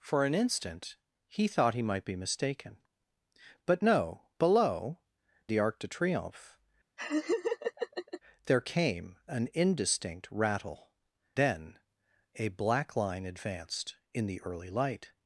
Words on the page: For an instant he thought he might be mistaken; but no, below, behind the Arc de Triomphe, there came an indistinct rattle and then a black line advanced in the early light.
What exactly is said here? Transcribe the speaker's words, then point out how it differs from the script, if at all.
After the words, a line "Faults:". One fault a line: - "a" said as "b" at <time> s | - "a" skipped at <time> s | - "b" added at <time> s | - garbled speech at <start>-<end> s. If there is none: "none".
For an instant he thought he might be mistaken; but no, below, the Arc de Triomphe, there came an indistinct rattle then a black line advanced in the early light.
Faults:
- "behind" skipped at 5.0 s
- "and" skipped at 10.9 s